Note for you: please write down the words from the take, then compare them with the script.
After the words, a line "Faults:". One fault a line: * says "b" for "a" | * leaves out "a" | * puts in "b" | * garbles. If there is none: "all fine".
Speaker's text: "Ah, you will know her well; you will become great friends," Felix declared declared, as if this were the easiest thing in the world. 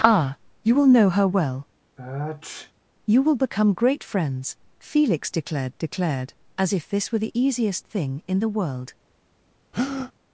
"Ah, you will know her well; you will become great friends," Felix declared declared, as if this were the easiest thing in the world.
Faults:
all fine